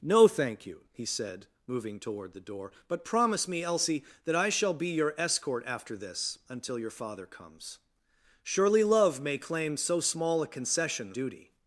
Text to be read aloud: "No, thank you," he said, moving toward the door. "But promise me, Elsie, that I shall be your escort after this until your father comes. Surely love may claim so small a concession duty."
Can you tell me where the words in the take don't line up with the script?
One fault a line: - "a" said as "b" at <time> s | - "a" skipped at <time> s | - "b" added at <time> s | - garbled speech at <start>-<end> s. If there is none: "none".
none